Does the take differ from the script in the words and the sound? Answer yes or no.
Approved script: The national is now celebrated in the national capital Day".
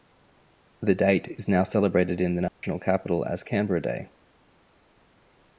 yes